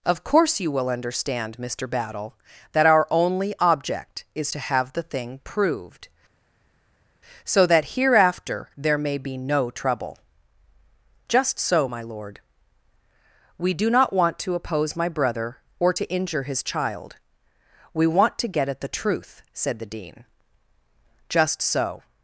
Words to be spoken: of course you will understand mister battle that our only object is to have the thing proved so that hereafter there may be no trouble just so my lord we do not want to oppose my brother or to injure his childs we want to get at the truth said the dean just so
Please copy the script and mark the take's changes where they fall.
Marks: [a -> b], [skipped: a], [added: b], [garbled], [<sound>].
of course you will understand mister battle that our only object is to have the thing proved so that hereafter there may be no trouble just so my lord we do not want to oppose my brother or to injure his [childs -> child] we want to get at the truth said the dean just so